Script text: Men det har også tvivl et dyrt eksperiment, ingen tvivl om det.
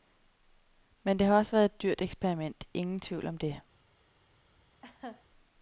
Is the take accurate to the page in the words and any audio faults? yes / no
no